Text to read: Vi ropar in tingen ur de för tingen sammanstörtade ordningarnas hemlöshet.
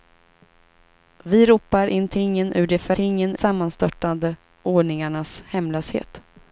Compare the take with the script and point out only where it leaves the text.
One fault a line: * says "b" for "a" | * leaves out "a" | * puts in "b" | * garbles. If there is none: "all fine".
all fine